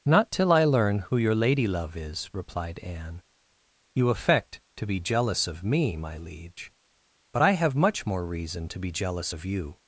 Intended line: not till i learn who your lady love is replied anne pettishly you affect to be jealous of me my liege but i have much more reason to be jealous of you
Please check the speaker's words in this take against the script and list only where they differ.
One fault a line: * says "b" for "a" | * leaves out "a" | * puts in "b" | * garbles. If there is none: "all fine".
* leaves out "pettishly"